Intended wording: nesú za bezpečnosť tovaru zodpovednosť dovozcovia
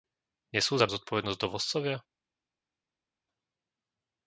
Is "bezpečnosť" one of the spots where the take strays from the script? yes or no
yes